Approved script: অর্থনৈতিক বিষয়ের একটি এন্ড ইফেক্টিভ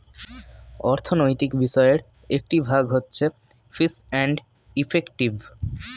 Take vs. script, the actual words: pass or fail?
fail